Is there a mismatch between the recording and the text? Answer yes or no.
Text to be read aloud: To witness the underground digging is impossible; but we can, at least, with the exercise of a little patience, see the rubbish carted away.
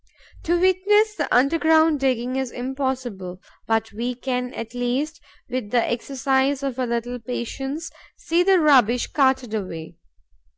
no